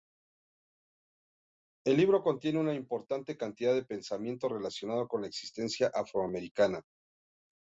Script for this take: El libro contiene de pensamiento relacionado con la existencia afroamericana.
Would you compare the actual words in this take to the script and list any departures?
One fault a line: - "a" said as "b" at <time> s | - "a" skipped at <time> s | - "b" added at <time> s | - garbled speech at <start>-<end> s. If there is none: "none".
- "una importante cantidad" added at 2.6 s